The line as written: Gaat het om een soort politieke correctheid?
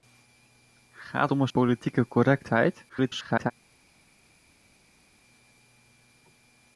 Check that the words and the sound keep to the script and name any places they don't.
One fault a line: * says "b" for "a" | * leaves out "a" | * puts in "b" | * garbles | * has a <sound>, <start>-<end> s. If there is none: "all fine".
* leaves out "het"
* leaves out "soort"
* garbles